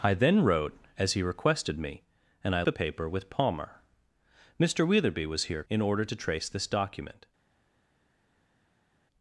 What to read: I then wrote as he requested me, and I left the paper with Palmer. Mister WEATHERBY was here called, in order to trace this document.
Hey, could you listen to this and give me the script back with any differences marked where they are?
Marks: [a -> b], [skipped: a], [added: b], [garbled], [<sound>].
I then wrote as he requested me, and I [skipped: left] the paper with Palmer. Mister WEATHERBY was here [skipped: called,] in order to trace this document.